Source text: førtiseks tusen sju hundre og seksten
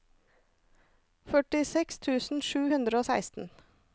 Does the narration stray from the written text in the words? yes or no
no